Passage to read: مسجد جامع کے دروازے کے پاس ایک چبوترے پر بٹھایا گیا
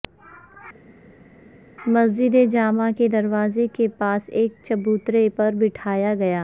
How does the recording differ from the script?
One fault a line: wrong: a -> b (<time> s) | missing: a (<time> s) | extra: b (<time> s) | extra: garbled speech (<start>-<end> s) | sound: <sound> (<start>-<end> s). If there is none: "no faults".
no faults